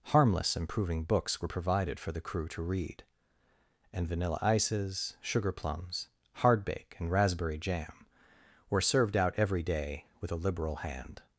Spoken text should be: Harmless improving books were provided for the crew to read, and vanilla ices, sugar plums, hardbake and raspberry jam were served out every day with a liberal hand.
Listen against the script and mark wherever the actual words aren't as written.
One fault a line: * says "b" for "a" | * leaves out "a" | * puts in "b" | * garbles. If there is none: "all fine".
all fine